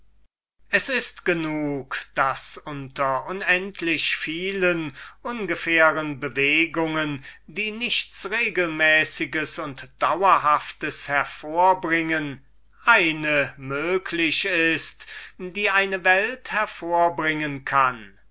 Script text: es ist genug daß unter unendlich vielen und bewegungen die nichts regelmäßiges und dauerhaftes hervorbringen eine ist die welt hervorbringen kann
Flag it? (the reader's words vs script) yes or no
yes